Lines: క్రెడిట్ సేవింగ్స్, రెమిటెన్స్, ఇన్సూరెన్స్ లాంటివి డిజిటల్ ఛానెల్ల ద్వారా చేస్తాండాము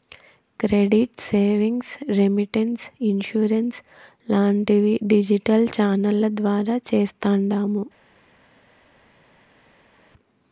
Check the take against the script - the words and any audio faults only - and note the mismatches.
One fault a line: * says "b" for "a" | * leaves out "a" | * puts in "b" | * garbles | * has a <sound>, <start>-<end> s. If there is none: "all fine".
all fine